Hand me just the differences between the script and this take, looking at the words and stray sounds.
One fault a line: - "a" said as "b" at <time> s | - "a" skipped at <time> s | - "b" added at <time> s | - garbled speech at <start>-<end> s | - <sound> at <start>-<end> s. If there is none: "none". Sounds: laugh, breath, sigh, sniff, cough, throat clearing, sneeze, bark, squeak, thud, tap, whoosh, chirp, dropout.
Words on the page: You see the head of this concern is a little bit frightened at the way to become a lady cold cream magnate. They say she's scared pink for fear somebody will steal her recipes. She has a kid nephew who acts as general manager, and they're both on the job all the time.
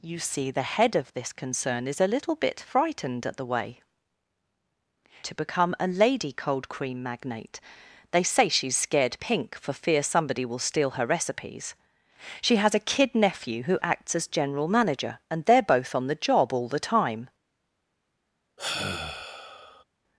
- sigh at 18.6-19.8 s